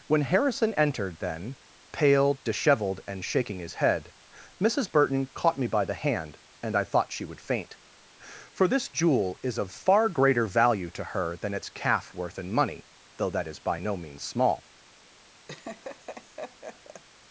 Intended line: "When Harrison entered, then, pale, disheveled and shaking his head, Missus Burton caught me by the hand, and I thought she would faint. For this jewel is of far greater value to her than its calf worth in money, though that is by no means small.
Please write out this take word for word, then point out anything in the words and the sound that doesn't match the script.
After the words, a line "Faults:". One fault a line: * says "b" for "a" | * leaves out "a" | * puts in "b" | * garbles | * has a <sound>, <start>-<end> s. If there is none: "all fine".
"When Harrison entered, then, pale, disheveled and shaking his head, Missus Burton caught me by the hand, and I thought she would faint. For this jewel is of far greater value to her than its calf worth in money, though that is by no means small.
Faults:
* has a laugh, 15.5-17.0 s